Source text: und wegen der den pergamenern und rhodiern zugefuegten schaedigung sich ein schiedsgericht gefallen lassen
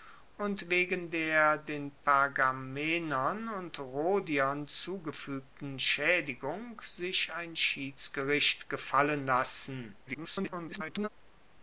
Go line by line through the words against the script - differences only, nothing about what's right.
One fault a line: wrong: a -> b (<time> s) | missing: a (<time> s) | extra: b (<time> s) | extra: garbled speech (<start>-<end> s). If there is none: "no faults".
extra: garbled speech (10.1-11.1 s)